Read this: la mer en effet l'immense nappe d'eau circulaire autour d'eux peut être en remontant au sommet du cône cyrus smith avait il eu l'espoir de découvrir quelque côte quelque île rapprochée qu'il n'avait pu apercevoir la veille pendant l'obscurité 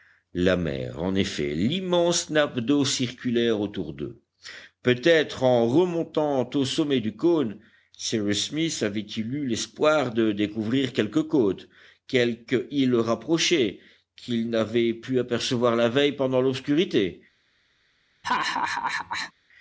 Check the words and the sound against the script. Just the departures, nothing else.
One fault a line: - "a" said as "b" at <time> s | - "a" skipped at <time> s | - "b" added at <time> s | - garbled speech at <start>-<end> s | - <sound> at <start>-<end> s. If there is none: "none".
- laugh at 18.2-19.3 s